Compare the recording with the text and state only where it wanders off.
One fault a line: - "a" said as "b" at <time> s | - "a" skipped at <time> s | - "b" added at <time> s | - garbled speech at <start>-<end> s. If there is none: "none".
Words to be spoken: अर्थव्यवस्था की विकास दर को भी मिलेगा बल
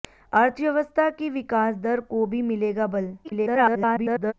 - garbled speech at 3.2-4.3 s